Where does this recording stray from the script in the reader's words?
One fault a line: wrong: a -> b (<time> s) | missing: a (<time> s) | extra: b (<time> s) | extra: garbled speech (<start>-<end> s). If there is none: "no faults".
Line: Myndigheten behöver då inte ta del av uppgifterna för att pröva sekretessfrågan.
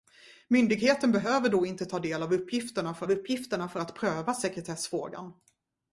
extra: av uppgifterna för (3.0 s)